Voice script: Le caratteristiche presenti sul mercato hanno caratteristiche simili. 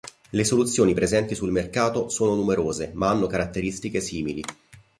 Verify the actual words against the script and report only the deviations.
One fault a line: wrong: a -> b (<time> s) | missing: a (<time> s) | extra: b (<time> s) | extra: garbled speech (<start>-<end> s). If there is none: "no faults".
wrong: caratteristiche -> soluzioni (0.4 s)
extra: sono numerose ma (2.1 s)